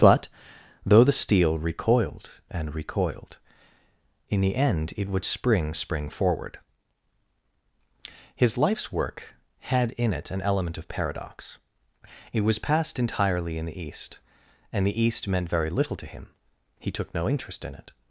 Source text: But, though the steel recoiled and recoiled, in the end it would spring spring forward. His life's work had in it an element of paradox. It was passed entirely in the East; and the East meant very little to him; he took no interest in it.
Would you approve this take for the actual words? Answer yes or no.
yes